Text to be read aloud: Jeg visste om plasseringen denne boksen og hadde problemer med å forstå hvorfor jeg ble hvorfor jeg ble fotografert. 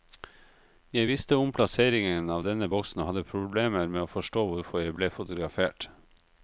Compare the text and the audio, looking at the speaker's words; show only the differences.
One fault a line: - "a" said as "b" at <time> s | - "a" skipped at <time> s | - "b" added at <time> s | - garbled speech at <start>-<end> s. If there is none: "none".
- "av" added at 2.3 s
- "hvorfor jeg ble" skipped at 5.1 s